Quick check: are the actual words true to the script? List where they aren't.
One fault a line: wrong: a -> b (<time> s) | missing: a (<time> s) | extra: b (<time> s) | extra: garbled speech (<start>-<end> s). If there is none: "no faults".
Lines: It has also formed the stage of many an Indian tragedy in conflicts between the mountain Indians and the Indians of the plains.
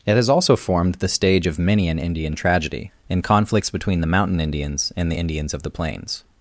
no faults